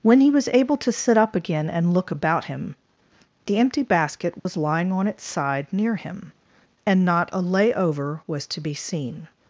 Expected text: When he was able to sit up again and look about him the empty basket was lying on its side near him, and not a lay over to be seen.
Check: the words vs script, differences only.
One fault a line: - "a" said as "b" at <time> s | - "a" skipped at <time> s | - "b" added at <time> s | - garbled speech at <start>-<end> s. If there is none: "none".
- "was" added at 8.3 s